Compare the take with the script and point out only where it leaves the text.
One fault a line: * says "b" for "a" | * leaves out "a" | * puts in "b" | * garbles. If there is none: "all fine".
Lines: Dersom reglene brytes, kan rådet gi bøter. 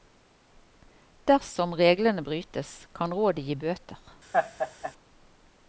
all fine